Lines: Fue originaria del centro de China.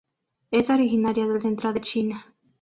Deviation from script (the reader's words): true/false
true